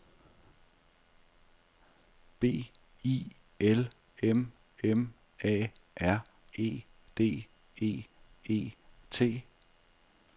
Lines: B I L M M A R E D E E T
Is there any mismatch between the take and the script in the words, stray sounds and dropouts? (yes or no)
no